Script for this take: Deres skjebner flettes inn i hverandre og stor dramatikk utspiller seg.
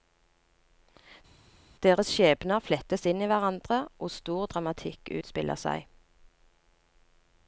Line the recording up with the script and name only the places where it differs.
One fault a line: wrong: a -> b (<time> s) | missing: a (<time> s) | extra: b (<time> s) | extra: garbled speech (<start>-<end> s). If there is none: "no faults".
no faults